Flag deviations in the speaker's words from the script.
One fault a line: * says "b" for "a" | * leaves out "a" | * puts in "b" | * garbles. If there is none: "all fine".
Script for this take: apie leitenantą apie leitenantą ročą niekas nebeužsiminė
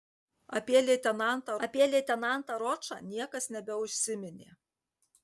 all fine